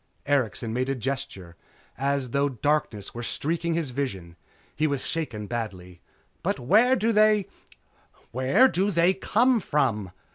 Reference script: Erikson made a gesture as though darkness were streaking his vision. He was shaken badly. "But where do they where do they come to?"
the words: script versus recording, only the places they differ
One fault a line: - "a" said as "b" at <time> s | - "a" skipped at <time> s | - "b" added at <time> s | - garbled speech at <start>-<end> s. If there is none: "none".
- "to" said as "from" at 9.6 s